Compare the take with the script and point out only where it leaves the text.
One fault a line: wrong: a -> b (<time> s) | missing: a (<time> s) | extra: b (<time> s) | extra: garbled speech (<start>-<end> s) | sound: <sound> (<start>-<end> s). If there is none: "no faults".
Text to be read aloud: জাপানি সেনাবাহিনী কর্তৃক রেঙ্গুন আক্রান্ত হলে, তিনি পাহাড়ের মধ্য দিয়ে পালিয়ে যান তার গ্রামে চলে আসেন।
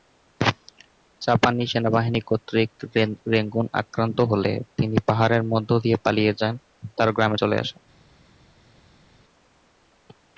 no faults